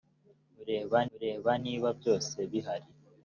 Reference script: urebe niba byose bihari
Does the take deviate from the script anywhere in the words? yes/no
yes